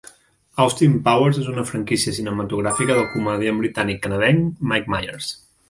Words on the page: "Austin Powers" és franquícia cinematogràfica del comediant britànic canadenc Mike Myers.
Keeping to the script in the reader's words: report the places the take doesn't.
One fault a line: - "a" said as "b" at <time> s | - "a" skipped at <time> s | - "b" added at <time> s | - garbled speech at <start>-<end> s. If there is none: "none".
- "una" added at 1.5 s